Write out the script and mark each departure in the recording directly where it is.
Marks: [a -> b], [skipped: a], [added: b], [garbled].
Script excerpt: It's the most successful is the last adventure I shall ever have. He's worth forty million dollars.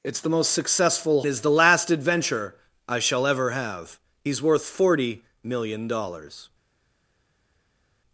It's the most successful is the last adventure I shall ever have. He's worth forty million dollars.